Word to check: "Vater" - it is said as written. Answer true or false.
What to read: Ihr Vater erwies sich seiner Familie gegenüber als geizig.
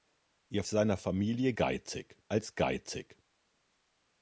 false